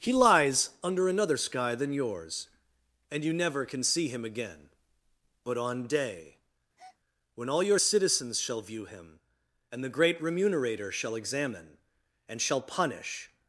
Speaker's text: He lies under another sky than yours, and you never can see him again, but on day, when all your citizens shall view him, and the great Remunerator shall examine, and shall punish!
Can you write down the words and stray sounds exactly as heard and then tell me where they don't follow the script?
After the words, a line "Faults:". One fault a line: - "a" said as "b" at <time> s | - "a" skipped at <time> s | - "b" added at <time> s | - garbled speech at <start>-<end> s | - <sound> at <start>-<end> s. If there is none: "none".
He lies under another sky than yours, and you never can see him again, but on day, when all your citizens shall view him, and the great Remunerator shall examine, and shall punish!
Faults:
- breath at 6.8-7.0 s